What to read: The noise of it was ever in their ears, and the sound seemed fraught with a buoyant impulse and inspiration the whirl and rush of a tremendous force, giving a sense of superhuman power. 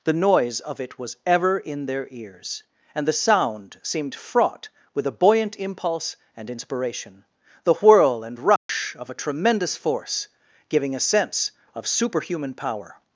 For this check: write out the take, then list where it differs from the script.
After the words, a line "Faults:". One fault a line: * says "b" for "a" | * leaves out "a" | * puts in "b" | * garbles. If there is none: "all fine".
The noise of it was ever in their ears, and the sound seemed fraught with a buoyant impulse and inspiration the whirl and rush of a tremendous force, giving a sense of superhuman power.
Faults:
all fine